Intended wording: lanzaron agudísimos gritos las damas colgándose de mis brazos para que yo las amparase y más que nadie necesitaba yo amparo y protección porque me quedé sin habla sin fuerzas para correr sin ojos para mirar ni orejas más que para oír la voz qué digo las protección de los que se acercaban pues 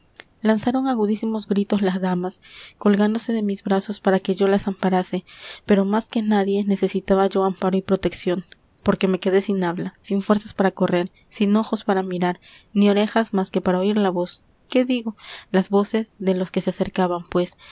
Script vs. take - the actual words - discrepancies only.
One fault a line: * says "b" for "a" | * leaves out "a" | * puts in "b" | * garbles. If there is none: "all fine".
* says "pero" for "y"
* says "voces" for "protección"